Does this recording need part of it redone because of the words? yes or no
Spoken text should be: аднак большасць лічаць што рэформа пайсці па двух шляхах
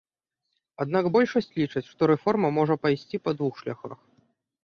yes